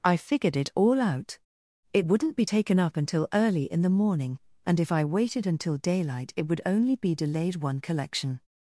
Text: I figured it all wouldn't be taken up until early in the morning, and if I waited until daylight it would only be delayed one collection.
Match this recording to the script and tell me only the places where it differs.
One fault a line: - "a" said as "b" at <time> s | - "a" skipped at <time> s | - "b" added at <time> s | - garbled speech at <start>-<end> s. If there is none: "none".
- "out It" added at 1.0 s